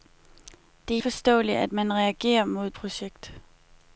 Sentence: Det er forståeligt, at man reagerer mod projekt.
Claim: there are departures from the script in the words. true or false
false